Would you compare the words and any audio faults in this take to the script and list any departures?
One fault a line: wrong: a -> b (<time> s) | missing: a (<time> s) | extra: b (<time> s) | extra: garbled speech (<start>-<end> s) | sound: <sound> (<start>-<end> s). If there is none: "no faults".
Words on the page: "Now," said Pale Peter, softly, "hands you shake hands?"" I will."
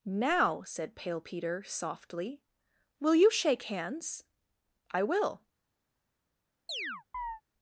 wrong: hands -> will (3.0 s)
sound: chirp (6.7-7.4 s)